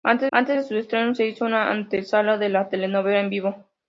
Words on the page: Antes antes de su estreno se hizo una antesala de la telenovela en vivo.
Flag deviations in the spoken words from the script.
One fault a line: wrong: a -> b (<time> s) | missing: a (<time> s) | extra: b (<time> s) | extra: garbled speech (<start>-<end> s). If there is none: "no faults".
no faults